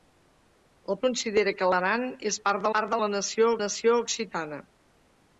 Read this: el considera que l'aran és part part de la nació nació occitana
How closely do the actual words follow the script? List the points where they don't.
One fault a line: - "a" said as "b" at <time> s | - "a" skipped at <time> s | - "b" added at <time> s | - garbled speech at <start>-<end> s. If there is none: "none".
none